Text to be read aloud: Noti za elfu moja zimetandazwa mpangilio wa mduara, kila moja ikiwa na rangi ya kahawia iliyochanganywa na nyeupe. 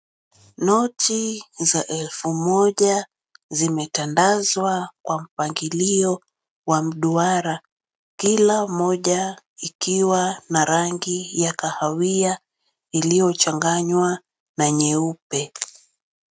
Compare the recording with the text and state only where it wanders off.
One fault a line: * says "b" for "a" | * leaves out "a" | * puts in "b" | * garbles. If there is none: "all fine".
* puts in "kwa"